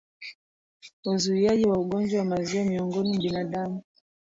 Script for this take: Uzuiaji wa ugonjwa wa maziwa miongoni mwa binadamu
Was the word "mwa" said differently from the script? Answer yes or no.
yes